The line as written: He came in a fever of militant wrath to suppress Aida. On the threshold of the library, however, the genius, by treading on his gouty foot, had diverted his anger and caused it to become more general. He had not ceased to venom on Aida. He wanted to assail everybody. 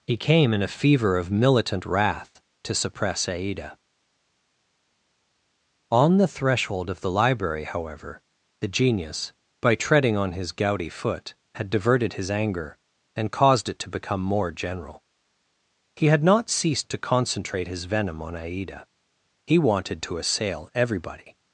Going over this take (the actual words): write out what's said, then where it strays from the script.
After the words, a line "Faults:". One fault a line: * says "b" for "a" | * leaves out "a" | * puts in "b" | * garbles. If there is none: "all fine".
He came in a fever of militant wrath to suppress Aida. On the threshold of the library, however, the genius, by treading on his gouty foot, had diverted his anger and caused it to become more general. He had not ceased to concentrate his venom on Aida. He wanted to assail everybody.
Faults:
* puts in "concentrate his"